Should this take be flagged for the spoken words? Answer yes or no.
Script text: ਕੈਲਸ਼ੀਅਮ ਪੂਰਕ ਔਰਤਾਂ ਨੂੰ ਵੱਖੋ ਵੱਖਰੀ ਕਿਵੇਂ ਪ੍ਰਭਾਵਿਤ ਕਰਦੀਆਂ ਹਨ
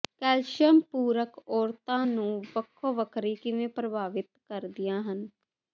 no